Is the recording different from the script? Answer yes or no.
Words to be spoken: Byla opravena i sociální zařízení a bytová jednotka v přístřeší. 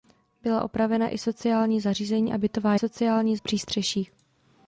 yes